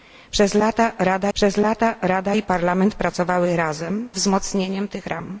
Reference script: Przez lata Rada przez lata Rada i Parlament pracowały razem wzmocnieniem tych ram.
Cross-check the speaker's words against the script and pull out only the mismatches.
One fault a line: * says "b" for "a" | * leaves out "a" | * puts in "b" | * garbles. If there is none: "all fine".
all fine